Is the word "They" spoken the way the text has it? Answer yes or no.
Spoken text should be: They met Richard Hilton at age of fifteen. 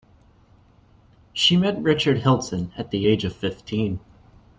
no